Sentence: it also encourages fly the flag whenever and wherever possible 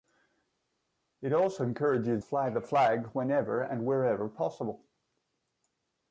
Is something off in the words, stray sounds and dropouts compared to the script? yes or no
no